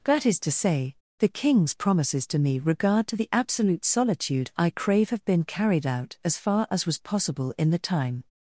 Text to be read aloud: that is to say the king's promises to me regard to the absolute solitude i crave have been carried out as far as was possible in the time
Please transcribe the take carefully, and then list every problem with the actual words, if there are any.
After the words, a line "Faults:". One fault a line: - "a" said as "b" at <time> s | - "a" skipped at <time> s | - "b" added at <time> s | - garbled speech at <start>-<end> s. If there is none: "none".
that is to say the king's promises to me regard to the absolute solitude i crave have been carried out as far as was possible in the time
Faults:
none